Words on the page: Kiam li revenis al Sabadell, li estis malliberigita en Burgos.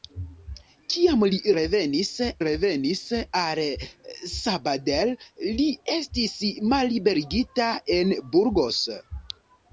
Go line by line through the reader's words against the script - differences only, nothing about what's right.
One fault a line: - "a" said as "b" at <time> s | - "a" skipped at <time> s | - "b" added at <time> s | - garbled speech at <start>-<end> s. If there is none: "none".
- "revenis" added at 2.4 s